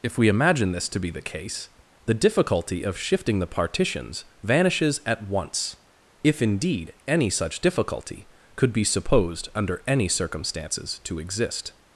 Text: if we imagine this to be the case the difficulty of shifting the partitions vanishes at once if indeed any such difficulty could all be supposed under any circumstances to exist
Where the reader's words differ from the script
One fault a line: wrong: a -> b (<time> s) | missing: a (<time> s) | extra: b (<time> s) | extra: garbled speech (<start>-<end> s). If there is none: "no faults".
missing: all (8.7 s)